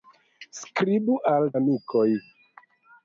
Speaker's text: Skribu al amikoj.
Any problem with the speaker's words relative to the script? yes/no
no